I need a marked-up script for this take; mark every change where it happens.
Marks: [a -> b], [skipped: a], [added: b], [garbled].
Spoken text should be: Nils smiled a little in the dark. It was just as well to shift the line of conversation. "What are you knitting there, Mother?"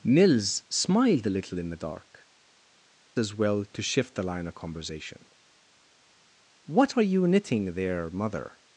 Nils smiled a little in the dark. [skipped: It was just] as well to shift the line of conversation. "What are you knitting there, Mother?"